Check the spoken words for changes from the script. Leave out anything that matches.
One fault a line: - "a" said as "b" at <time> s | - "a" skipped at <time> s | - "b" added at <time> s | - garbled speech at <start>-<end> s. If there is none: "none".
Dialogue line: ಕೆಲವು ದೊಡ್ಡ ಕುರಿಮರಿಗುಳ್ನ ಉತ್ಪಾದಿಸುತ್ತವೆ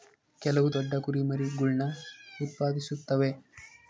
none